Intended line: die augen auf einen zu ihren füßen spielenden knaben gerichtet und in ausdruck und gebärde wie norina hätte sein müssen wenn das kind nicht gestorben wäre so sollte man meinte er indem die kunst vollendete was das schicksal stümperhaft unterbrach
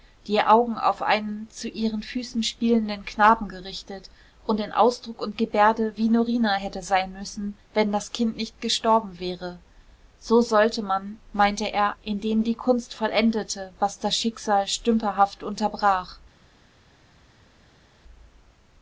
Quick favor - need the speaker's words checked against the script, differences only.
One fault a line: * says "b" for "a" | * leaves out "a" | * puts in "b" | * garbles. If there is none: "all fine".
all fine